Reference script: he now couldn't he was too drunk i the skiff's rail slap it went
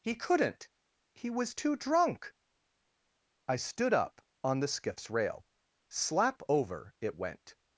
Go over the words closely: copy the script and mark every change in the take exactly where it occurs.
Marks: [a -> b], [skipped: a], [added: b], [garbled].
he [skipped: now] couldn't he was too drunk i [added: stood up on] the skiff's rail slap [added: over] it went